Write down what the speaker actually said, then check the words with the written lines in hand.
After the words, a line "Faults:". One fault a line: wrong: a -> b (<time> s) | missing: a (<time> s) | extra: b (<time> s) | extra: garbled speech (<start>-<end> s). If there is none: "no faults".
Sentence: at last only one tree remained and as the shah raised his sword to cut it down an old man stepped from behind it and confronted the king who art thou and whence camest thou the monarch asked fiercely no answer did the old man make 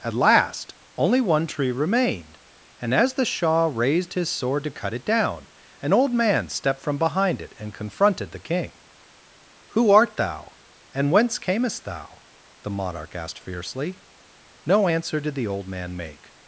at last only one tree remained and as the shah raised his sword to cut it down an old man stepped from behind it and confronted the king who art thou and whence camest thou the monarch asked fiercely no answer did the old man make
Faults:
no faults